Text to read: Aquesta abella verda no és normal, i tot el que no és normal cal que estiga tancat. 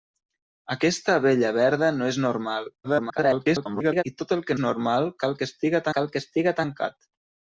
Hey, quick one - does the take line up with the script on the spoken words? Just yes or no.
no